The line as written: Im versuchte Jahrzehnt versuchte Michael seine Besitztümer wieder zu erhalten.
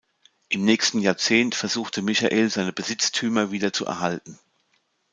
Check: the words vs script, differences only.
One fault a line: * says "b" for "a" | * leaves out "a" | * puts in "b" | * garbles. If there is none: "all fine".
* says "nächsten" for "versuchte"